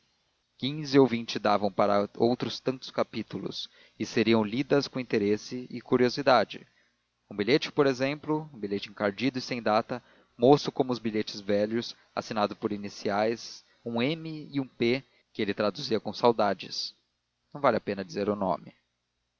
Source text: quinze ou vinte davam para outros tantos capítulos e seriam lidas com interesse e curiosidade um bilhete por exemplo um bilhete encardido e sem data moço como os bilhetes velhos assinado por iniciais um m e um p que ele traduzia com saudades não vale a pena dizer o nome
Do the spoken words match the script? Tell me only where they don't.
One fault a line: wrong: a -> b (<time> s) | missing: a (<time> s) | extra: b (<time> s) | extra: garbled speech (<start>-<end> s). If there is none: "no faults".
no faults